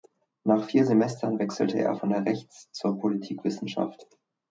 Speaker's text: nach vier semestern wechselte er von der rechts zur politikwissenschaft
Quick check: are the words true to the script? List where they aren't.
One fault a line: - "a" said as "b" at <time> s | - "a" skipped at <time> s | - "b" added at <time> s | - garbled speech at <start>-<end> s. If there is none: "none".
none